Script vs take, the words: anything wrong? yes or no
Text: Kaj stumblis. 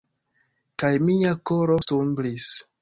yes